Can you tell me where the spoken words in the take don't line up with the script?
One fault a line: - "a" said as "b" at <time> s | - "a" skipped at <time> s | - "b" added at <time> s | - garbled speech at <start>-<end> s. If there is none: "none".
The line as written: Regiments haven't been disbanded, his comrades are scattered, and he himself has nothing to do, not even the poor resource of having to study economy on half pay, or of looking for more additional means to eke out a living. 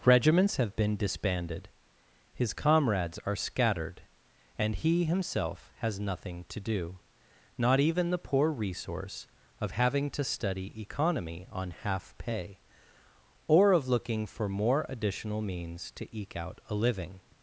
- "haven't" said as "have" at 0.6 s